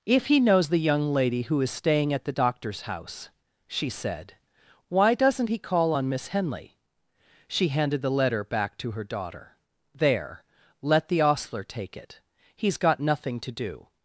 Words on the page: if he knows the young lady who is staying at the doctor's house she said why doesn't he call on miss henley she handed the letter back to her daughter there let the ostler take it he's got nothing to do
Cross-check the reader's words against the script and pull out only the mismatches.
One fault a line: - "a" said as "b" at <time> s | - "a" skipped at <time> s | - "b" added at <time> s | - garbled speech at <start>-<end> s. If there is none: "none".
none